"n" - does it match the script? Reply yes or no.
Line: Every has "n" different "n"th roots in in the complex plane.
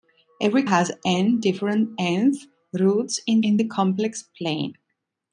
yes